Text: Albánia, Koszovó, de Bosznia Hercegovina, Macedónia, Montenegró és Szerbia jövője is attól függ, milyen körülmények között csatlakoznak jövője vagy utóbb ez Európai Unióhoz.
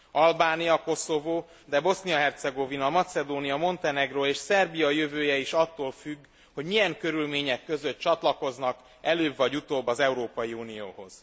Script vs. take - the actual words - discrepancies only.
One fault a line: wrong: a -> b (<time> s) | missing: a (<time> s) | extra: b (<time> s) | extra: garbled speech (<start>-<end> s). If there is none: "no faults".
extra: hogy (6.5 s)
wrong: jövője -> előbb (9.0 s)
wrong: ez -> az (9.9 s)